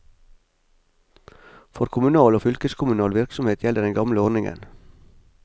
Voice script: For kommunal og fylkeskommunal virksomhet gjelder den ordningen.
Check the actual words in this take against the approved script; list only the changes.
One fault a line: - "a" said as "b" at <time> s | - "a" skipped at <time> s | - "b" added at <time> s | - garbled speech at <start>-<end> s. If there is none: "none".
- "gamle" added at 4.0 s